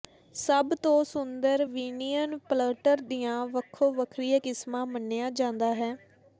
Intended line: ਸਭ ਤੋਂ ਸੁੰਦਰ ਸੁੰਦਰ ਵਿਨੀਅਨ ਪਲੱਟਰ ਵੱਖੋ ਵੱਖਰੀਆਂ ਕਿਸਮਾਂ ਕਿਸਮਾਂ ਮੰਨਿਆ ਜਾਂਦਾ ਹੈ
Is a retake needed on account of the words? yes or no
yes